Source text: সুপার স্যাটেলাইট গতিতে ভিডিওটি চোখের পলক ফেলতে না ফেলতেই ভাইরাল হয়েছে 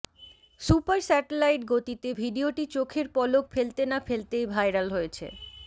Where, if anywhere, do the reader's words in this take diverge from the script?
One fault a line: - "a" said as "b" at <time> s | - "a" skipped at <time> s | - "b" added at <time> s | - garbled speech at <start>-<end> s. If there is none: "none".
none